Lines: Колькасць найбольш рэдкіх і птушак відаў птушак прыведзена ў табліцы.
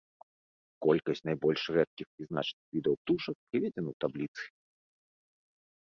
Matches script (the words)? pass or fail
fail